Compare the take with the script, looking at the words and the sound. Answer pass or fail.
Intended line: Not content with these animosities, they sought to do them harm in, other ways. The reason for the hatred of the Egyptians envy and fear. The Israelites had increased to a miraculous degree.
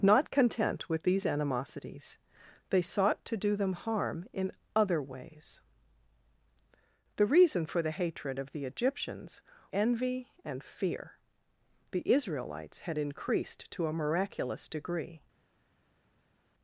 pass